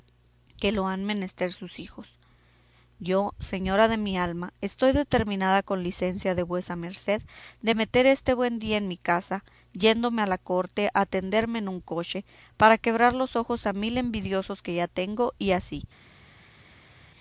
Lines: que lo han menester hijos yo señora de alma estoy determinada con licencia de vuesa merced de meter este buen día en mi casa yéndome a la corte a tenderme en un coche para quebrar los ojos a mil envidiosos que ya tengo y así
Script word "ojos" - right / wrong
right